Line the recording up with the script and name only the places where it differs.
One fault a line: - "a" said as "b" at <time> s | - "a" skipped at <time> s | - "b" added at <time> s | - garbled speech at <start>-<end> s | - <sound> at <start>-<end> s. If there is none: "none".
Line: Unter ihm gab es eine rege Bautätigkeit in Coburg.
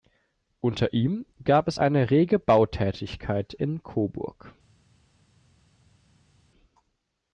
none